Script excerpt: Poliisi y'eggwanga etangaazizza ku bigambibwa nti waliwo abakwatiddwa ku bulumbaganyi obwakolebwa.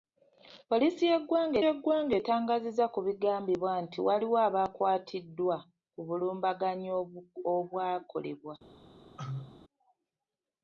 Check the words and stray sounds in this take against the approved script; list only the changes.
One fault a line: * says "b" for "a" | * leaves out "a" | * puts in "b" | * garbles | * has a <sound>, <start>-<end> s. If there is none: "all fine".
* puts in "y'eggwanga"
* has a cough, 9.2-9.6 s